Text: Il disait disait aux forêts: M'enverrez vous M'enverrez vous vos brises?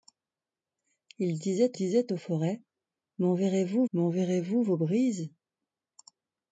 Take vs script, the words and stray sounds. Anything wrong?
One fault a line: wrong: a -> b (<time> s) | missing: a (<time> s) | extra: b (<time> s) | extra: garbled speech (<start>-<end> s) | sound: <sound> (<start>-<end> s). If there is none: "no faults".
no faults